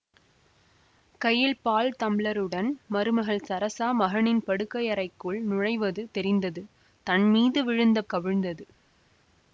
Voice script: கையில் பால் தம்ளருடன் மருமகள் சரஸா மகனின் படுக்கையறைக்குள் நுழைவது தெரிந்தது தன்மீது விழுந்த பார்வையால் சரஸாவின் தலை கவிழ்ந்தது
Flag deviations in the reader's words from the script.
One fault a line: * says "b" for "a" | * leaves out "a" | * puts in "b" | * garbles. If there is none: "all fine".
* leaves out "பார்வையால் சரஸாவின் தலை"